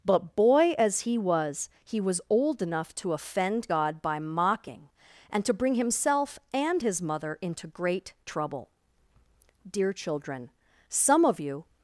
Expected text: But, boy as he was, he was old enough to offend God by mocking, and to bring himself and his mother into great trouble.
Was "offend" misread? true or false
false